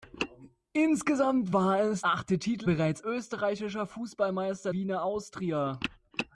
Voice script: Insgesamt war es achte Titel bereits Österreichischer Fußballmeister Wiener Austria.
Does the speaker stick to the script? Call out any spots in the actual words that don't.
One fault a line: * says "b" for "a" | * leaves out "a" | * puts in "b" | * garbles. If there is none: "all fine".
all fine